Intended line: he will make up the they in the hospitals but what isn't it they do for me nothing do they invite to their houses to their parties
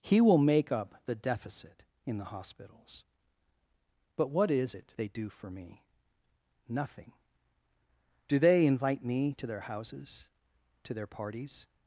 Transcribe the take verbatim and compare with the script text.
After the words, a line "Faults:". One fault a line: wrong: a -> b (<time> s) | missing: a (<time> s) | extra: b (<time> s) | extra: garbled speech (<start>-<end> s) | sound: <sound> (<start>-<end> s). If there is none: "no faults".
he will make up the deficit in the hospitals but what is it they do for me nothing do they invite me to their houses to their parties
Faults:
wrong: they -> deficit (1.1 s)
wrong: isn't -> is (4.5 s)
extra: me (9.0 s)